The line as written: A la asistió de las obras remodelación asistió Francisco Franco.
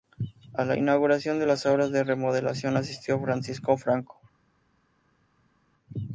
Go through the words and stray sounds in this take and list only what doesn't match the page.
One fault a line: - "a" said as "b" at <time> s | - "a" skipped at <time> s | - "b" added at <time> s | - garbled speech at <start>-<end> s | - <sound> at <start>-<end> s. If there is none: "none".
- "asistió" said as "inauguración" at 0.8 s
- "de" added at 1.9 s